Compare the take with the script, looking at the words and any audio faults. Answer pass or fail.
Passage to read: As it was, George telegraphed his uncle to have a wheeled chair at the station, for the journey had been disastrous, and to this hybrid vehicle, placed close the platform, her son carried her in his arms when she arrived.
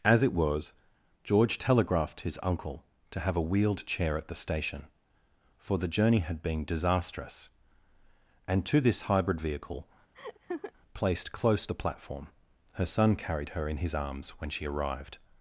fail